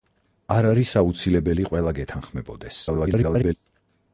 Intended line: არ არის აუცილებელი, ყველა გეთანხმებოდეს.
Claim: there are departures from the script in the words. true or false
true